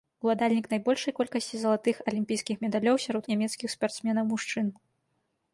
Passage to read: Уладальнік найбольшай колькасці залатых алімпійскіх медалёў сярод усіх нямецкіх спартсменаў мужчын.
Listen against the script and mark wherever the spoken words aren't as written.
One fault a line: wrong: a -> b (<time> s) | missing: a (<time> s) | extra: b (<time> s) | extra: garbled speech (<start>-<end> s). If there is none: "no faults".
missing: усіх (3.2 s)